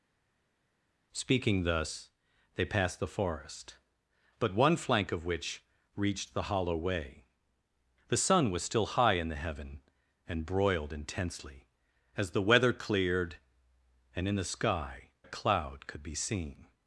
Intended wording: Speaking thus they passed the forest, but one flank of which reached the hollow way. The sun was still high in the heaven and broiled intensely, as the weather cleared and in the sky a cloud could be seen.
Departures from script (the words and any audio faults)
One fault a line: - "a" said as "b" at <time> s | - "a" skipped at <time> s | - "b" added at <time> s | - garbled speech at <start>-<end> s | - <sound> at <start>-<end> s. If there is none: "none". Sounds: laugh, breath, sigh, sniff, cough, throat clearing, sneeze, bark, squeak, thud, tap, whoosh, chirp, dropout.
none